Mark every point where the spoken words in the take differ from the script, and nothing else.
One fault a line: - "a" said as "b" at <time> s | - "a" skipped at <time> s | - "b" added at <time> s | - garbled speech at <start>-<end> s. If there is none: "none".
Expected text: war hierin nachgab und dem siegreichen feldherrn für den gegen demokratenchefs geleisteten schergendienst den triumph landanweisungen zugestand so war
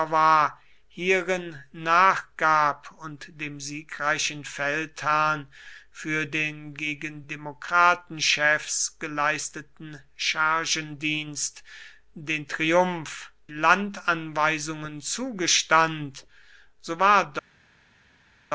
none